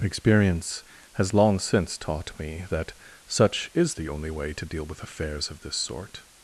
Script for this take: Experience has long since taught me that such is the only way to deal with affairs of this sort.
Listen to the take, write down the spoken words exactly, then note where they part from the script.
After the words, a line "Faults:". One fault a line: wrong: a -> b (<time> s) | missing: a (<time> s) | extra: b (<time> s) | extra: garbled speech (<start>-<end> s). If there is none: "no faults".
Experience has long since taught me that such is the only way to deal with affairs of this sort.
Faults:
no faults